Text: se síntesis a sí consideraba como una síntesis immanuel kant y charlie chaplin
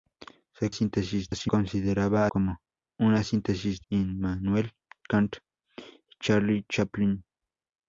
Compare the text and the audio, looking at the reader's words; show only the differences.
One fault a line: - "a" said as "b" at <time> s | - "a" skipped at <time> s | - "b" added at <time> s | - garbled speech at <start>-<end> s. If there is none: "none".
none